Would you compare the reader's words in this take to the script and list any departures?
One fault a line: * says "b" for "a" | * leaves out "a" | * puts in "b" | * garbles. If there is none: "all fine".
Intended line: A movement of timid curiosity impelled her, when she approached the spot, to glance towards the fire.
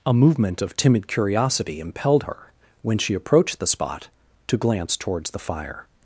all fine